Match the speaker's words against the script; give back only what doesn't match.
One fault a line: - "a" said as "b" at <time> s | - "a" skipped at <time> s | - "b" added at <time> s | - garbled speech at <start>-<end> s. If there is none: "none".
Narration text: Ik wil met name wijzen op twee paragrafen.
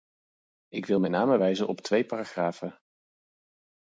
none